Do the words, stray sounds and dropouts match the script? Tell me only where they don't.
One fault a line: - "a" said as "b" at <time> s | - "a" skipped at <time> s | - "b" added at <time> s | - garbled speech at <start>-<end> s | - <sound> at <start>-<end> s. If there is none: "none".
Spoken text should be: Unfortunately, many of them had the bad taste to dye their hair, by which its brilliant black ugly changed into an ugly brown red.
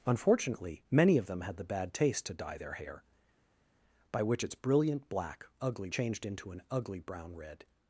none